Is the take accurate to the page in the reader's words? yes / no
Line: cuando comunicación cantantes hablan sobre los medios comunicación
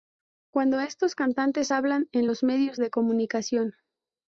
no